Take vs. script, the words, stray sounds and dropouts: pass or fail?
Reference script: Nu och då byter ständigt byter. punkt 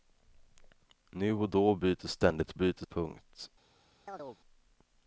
fail